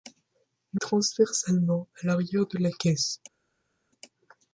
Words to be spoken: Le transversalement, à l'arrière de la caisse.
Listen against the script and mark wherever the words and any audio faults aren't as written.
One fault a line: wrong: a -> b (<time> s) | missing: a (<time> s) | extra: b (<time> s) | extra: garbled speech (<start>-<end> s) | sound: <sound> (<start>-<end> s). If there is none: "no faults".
no faults